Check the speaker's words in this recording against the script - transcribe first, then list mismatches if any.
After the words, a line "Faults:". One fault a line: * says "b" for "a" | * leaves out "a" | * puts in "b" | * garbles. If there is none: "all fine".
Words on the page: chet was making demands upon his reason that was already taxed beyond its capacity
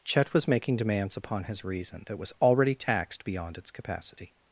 chet was making demands upon his reason that was already taxed beyond its capacity
Faults:
all fine